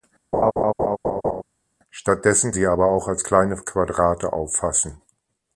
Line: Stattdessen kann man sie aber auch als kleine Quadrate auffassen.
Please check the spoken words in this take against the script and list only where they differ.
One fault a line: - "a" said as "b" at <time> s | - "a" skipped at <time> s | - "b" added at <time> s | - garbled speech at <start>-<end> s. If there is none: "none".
- "kann man" skipped at 2.5 s